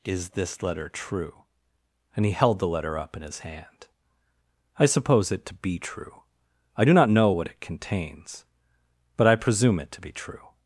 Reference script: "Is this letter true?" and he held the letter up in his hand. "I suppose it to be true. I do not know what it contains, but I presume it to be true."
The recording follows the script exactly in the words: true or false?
true